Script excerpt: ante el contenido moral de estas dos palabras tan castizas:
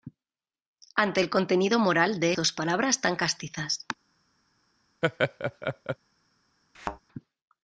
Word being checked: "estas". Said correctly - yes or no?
no